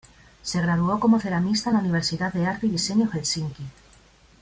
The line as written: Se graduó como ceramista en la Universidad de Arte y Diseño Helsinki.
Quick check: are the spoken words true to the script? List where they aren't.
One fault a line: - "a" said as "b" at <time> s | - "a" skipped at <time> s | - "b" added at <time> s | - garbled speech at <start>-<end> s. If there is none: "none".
none